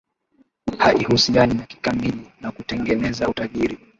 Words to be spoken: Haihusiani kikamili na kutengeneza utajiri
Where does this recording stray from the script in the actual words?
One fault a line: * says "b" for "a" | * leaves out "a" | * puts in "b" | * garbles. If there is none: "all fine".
all fine